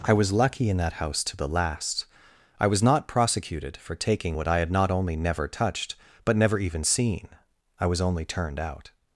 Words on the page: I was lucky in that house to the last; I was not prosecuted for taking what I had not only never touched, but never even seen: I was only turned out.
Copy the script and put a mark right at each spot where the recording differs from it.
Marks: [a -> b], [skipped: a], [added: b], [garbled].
I was lucky in that house to the last; I was not prosecuted for taking what I had not only never touched, but never even seen: I was only turned out.